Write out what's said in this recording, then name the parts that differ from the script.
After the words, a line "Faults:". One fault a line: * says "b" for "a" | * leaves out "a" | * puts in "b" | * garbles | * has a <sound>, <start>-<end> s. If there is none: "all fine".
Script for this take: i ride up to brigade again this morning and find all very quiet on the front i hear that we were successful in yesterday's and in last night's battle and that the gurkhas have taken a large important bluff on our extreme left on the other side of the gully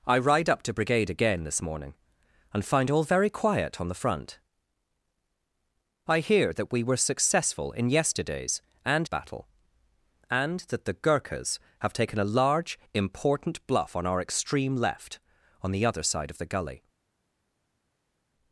i ride up to brigade again this morning and find all very quiet on the front i hear that we were successful in yesterday's and battle and that the gurkhas have taken a large important bluff on our extreme left on the other side of the gully
Faults:
* leaves out "in last night's"